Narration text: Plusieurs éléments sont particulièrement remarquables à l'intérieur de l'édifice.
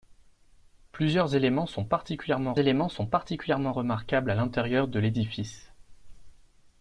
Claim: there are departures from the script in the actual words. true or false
true